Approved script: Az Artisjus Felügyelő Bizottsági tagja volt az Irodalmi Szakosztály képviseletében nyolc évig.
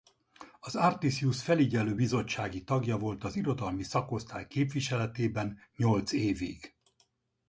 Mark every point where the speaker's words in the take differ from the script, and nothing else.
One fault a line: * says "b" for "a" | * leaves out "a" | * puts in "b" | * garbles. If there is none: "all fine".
all fine